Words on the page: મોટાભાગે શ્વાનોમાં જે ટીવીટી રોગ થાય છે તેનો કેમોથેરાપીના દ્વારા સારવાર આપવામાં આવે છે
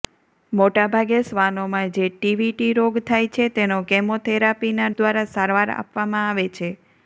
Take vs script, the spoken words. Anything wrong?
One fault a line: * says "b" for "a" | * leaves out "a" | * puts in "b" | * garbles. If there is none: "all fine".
all fine